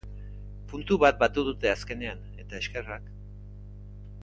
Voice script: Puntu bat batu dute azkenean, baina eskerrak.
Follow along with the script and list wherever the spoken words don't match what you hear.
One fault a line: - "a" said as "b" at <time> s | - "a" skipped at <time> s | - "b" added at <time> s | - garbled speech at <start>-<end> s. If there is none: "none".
- "baina" said as "eta" at 2.4 s